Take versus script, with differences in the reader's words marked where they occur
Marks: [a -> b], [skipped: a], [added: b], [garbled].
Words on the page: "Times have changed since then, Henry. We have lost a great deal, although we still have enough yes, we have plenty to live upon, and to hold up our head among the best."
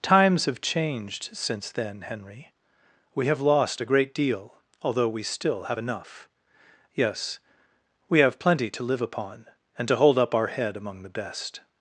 "Times have changed since then, Henry. We have lost a great deal, although we still have enough yes, we have plenty to live upon, and to hold up our head among the best."